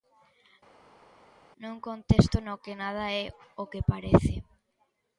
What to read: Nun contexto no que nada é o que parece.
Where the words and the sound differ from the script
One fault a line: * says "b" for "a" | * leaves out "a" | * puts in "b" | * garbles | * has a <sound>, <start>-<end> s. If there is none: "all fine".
all fine